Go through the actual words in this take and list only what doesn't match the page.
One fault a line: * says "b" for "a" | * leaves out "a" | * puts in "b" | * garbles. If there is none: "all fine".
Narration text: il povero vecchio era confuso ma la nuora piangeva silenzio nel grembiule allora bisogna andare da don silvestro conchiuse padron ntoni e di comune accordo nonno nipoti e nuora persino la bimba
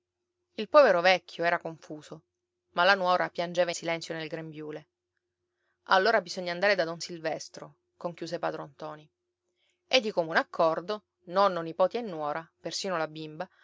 all fine